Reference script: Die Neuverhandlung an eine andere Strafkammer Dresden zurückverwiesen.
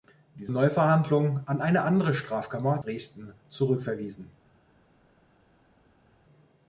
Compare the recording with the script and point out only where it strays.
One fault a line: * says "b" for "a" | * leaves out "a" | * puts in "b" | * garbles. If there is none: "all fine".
all fine